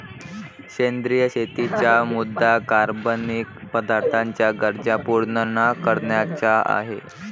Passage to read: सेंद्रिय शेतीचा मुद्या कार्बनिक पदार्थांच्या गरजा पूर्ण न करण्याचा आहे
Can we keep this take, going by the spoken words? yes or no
yes